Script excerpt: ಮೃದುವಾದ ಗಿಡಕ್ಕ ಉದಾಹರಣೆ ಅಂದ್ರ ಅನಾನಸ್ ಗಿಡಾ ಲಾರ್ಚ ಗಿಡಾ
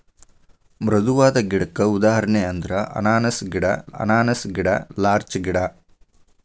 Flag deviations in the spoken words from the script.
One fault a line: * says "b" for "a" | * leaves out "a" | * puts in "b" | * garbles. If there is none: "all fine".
* puts in "ಅನಾನಸ್ ಗಿಡಾ"